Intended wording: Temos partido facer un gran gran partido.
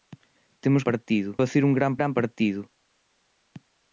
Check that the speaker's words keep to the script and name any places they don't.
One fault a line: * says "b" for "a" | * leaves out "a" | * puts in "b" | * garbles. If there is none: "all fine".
all fine